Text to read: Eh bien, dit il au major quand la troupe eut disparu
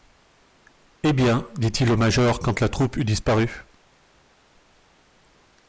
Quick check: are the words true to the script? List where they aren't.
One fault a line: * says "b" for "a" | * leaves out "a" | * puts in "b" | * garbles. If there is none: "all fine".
all fine